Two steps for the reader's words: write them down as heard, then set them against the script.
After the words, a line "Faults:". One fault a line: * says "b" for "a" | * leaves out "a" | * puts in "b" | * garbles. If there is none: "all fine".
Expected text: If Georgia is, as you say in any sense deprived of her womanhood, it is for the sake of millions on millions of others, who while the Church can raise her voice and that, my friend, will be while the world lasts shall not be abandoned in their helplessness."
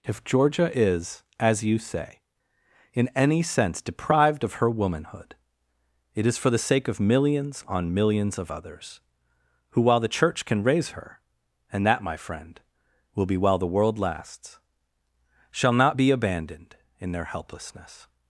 If Georgia is, as you say in any sense deprived of her womanhood, it is for the sake of millions on millions of others, who while the Church can raise her and that, my friend, will be while the world lasts shall not be abandoned in their helplessness."
Faults:
* leaves out "voice"